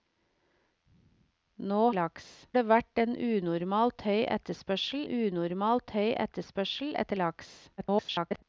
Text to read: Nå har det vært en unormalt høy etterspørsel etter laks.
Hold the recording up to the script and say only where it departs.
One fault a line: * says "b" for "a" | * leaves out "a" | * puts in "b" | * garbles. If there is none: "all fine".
* says "laks" for "har"
* puts in "unormalt høy etterspørsel"
* garbles